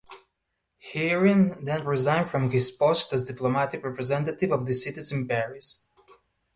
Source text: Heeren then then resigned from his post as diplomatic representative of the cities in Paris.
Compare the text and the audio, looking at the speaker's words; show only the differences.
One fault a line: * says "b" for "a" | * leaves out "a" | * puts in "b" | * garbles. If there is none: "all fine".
* leaves out "then"